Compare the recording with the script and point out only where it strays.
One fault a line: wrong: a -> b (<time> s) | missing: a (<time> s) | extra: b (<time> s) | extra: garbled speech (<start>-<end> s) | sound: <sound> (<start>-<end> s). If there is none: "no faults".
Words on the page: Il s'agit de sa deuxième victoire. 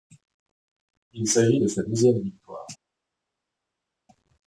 no faults